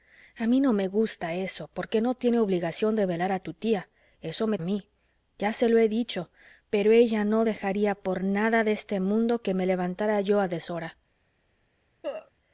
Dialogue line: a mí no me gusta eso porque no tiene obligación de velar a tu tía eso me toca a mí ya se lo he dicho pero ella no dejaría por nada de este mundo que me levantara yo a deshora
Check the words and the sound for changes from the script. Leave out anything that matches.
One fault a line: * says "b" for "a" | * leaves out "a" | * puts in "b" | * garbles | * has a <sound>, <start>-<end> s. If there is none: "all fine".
* leaves out "toca"
* has a cough, 12.0-12.3 s